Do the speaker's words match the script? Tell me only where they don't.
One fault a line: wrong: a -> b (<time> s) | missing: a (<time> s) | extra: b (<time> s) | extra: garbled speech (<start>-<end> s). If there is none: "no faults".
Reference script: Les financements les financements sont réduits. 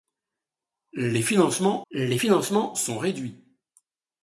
no faults